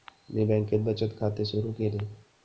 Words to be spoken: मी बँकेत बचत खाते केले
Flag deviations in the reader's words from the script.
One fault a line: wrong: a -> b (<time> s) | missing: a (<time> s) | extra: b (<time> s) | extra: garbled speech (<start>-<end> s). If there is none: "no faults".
extra: सुरु (1.4 s)